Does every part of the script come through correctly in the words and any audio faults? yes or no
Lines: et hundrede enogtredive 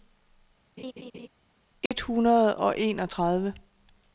no